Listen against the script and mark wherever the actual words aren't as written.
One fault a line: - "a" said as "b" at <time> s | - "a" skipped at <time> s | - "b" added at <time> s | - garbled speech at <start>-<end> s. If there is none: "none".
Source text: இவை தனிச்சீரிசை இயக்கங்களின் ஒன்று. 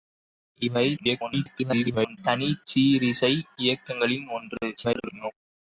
- garbled speech at 1.0-2.2 s
- garbled speech at 4.8-5.3 s